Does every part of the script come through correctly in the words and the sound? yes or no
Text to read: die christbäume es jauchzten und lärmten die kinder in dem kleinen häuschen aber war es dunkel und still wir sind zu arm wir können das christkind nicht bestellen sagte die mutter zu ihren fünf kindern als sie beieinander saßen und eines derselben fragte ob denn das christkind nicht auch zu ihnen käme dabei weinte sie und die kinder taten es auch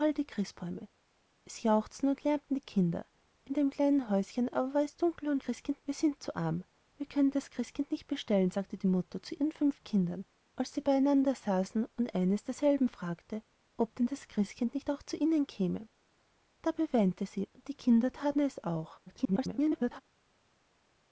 no